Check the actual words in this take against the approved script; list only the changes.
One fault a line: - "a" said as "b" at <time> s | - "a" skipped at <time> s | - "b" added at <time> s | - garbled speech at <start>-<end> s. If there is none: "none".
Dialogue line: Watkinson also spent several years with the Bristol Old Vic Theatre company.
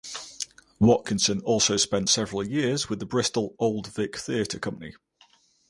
none